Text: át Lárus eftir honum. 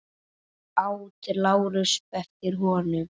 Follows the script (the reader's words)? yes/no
yes